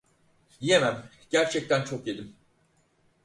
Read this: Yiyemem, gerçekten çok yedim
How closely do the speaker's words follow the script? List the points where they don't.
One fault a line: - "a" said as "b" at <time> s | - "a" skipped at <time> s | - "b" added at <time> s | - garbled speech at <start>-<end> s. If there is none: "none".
none